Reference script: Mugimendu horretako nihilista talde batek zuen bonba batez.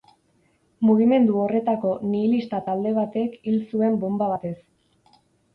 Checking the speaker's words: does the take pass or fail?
fail